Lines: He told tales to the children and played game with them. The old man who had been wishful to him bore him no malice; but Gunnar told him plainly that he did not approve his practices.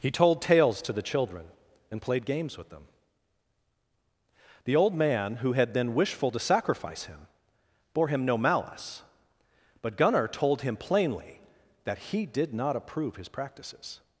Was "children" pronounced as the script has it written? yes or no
yes